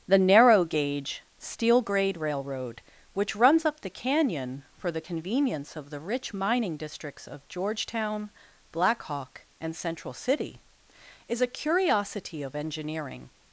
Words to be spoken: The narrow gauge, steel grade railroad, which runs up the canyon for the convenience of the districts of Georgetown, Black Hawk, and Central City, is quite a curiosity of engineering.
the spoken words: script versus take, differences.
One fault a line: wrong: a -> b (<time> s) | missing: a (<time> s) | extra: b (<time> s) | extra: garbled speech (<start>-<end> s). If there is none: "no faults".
extra: rich mining (6.0 s)
missing: quite (11.4 s)